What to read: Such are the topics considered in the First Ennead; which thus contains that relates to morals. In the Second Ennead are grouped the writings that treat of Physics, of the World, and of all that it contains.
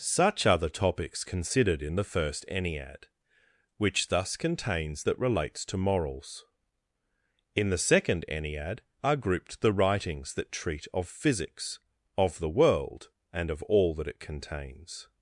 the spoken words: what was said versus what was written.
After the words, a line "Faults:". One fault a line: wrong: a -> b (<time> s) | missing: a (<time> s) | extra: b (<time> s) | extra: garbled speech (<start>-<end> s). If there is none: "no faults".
Such are the topics considered in the First Ennead; which thus contains that relates to morals. In the Second Ennead are grouped the writings that treat of Physics, of the World, and of all that it contains.
Faults:
no faults